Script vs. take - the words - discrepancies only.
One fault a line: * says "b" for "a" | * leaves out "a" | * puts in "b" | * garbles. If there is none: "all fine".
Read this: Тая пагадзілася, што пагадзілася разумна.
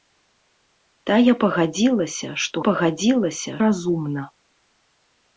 all fine